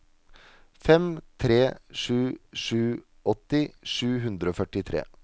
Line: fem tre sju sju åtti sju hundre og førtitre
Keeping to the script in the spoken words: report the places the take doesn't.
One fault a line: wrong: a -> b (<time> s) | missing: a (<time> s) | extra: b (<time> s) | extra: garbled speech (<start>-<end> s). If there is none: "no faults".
no faults